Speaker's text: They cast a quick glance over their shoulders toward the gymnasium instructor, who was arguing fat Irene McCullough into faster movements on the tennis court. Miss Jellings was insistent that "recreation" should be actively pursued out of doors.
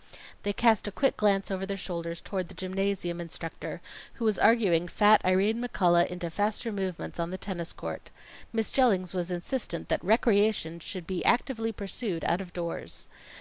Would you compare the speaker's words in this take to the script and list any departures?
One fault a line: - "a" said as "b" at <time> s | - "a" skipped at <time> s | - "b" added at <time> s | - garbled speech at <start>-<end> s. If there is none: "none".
none